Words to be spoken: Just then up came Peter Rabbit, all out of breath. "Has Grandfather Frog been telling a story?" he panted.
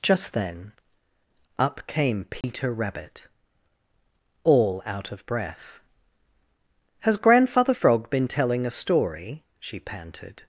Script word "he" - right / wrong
wrong